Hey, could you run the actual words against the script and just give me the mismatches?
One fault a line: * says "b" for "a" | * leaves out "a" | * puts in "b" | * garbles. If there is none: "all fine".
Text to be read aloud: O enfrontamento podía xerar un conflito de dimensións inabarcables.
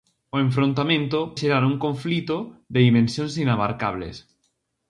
* leaves out "podía"